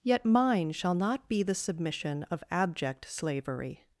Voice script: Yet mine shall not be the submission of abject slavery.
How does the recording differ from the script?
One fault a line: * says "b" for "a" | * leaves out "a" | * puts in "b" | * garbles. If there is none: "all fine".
all fine